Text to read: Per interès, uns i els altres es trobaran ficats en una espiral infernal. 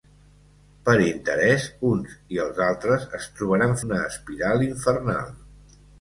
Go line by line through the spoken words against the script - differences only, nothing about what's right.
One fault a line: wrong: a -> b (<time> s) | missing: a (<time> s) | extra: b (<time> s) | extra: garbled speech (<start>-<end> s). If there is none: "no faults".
missing: ficats en (3.7 s)